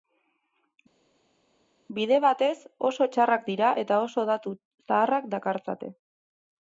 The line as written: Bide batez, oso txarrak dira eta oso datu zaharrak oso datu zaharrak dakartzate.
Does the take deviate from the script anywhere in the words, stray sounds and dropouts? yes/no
yes